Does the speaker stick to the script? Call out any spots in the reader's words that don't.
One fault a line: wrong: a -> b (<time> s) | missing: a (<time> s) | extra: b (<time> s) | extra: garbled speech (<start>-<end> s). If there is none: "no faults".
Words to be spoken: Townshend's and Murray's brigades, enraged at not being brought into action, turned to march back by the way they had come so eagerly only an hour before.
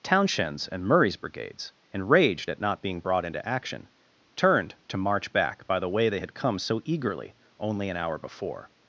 no faults